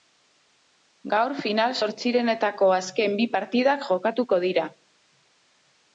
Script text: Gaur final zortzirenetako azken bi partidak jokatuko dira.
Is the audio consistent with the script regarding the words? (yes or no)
yes